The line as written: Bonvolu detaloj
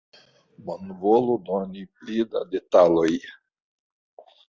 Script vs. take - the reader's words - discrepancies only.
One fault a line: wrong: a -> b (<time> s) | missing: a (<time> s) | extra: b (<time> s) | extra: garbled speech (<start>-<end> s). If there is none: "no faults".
extra: doni pli da (1.5 s)